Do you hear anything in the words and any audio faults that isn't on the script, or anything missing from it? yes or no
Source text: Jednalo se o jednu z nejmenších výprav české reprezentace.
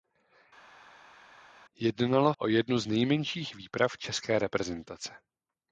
yes